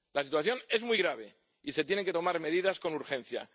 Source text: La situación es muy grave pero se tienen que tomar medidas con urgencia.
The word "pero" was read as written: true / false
false